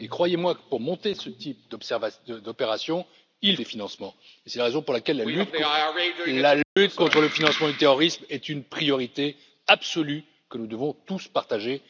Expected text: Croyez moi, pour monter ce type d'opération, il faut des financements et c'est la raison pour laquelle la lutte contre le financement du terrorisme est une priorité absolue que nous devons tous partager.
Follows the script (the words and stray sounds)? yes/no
no